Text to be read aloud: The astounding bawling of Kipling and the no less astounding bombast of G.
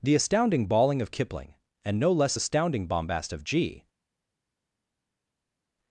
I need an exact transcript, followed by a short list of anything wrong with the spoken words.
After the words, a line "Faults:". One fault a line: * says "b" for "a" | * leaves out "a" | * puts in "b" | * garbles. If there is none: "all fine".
The astounding bawling of Kipling and no less astounding bombast of G.
Faults:
* leaves out "the"